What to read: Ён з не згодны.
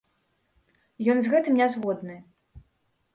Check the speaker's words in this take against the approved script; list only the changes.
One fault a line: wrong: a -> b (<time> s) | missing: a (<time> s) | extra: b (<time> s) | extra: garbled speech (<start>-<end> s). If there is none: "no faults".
extra: гэтым (1.3 s)